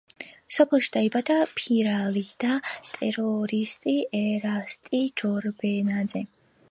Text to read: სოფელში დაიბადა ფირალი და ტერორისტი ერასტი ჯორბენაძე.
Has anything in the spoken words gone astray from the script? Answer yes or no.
no